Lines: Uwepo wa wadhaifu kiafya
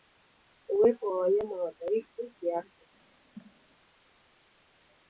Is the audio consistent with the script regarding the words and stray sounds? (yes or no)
no